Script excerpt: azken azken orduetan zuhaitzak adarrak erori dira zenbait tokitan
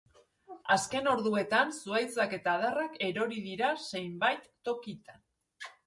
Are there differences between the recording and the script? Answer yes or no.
yes